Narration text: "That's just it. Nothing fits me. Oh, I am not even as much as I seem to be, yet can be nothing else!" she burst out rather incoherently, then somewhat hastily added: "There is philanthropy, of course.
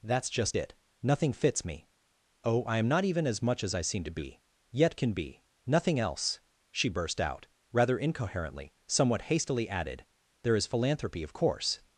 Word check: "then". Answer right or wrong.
wrong